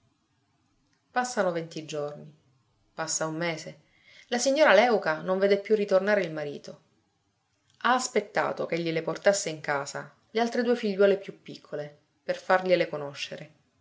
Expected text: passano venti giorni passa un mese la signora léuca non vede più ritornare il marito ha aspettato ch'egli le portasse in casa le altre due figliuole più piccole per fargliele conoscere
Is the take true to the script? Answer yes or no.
yes